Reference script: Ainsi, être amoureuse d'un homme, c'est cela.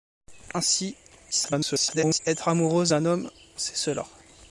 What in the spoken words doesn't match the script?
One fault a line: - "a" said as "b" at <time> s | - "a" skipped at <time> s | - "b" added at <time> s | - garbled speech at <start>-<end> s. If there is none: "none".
- garbled speech at 1.3-2.2 s